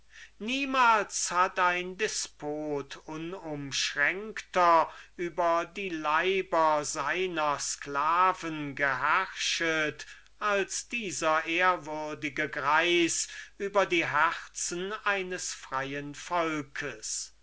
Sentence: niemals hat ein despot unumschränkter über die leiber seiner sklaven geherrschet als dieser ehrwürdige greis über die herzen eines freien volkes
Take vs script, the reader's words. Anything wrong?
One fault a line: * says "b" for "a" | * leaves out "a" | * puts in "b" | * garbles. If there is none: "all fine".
all fine